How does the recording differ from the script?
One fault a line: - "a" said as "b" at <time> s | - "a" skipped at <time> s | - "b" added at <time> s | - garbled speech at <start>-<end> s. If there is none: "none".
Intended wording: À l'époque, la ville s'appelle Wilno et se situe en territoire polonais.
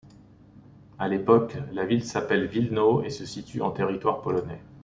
none